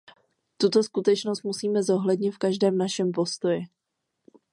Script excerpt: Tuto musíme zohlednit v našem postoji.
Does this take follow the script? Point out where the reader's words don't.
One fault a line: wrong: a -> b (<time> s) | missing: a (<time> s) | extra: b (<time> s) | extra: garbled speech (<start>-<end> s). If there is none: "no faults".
extra: skutečnost (0.8 s)
extra: každém (2.4 s)